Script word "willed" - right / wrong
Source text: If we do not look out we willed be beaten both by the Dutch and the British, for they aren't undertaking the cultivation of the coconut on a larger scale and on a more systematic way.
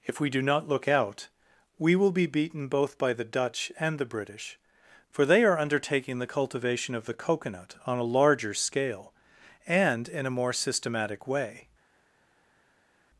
wrong